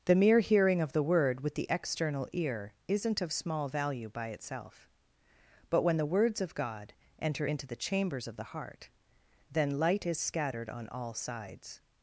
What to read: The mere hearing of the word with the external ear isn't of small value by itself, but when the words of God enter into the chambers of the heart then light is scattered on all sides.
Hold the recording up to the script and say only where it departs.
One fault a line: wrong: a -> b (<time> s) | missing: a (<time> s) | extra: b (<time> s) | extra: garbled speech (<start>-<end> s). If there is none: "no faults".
no faults